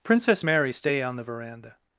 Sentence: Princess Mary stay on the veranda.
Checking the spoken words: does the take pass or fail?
pass